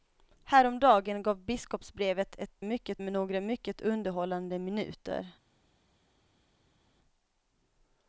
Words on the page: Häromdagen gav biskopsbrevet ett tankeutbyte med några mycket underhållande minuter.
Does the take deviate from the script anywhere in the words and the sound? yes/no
yes